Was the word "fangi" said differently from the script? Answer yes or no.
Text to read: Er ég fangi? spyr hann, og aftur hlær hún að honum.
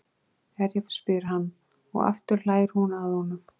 yes